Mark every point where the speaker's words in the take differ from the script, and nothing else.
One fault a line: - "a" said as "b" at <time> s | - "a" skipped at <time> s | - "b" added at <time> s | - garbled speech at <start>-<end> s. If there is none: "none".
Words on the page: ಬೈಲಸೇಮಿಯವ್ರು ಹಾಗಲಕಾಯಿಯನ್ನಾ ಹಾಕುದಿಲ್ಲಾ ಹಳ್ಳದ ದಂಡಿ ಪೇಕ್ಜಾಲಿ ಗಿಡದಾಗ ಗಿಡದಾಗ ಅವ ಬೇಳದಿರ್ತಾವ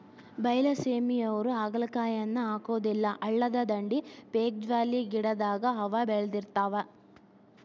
- "ಗಿಡದಾಗ" skipped at 5.6 s